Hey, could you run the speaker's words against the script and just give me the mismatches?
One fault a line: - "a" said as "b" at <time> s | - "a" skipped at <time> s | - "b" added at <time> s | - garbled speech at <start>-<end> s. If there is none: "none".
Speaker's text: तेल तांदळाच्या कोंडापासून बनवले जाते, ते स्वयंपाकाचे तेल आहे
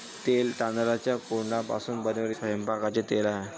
- "जाते ते" skipped at 2.4 s